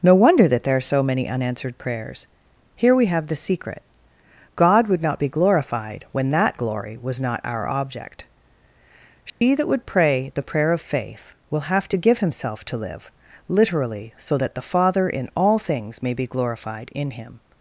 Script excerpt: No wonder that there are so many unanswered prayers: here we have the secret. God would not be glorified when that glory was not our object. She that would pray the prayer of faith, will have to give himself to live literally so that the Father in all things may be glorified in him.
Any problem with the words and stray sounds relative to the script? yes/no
yes